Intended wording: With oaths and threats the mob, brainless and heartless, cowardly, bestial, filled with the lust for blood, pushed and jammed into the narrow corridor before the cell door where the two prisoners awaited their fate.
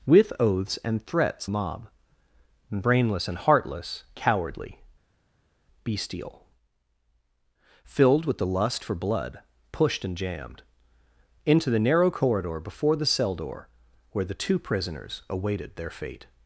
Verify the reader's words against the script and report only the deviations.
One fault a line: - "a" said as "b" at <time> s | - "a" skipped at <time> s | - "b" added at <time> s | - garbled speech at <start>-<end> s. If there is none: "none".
- "the" skipped at 1.4 s